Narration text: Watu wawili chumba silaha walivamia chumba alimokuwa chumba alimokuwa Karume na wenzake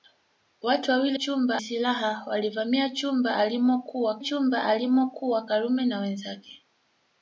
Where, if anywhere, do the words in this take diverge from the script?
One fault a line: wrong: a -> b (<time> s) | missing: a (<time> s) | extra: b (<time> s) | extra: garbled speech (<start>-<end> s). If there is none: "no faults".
no faults